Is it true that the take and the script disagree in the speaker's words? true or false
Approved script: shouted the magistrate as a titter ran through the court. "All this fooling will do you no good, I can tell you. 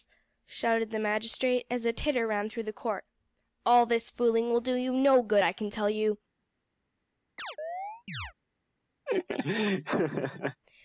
false